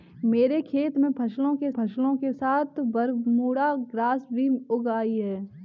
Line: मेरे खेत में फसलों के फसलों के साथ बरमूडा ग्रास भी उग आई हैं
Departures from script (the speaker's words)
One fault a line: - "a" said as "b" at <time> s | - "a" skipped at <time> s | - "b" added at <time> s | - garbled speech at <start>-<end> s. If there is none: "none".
none